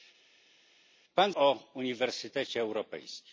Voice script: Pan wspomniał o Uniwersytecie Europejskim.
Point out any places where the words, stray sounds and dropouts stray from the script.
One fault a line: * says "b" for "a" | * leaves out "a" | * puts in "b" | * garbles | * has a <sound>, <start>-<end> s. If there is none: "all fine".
* leaves out "wspomniał"